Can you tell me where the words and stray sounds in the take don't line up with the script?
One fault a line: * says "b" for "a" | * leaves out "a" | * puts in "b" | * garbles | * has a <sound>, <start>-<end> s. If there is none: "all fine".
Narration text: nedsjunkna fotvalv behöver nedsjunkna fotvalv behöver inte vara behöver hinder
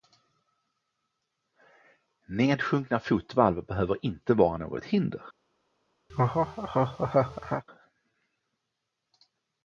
* leaves out "nedsjunkna fotvalv behöver"
* says "något" for "behöver"
* has a laugh, 6.1-7.6 s